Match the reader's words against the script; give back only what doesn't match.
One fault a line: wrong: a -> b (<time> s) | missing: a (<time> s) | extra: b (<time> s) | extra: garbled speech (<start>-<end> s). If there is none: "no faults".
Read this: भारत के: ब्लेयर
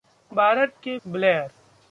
no faults